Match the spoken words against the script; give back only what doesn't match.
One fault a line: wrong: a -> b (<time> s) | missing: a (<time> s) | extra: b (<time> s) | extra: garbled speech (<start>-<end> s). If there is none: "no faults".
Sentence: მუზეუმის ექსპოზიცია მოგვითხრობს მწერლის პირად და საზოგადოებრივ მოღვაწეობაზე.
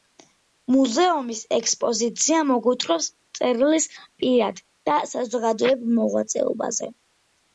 no faults